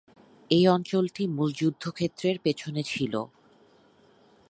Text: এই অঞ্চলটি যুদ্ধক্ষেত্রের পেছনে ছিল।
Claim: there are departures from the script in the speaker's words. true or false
true